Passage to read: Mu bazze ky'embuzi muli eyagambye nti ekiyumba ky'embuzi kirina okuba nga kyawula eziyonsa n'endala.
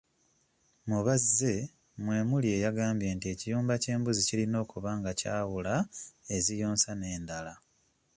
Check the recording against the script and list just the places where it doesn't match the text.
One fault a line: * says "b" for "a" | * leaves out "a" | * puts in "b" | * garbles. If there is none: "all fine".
* says "mwe" for "ky'embuzi"